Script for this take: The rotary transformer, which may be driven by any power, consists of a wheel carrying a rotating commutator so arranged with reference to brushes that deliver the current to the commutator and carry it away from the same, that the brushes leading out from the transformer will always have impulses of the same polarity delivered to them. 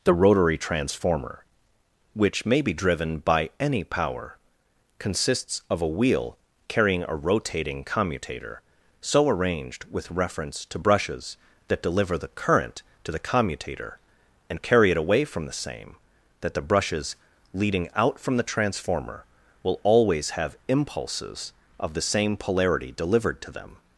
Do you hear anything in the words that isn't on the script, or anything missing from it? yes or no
no